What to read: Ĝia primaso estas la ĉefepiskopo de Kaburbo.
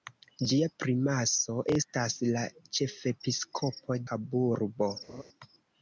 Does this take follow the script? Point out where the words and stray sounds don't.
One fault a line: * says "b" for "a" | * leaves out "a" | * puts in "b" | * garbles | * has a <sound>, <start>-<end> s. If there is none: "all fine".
* leaves out "de"
* has a laugh, 5.1-5.2 s